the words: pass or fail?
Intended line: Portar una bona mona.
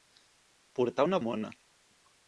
fail